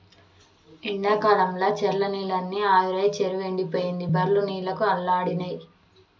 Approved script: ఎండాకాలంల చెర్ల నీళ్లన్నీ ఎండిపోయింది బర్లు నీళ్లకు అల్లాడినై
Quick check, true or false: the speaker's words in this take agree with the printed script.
false